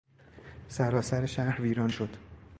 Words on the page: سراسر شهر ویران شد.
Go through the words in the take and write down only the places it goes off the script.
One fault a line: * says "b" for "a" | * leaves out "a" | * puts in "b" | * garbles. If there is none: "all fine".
all fine